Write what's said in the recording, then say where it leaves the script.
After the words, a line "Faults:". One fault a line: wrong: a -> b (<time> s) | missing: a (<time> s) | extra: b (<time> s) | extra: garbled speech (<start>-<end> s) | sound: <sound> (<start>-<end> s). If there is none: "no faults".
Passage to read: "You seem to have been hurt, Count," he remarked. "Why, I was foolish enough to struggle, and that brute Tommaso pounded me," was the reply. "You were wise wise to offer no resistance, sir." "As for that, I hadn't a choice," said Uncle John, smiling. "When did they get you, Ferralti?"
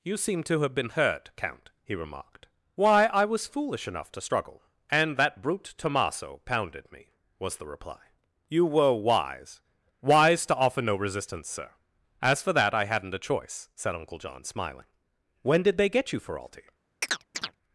"You seem to have been hurt, Count," he remarked. "Why, I was foolish enough to struggle, and that brute Tommaso pounded me," was the reply. "You were wise wise to offer no resistance, sir." "As for that, I hadn't a choice," said Uncle John, smiling. "When did they get you, Ferralti?"
Faults:
sound: chirp (17.0-17.6 s)